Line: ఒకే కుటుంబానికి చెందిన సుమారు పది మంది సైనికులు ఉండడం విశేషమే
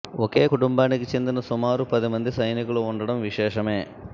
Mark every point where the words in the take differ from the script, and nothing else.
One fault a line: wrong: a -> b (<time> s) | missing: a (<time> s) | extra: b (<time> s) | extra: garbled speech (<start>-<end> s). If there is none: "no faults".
no faults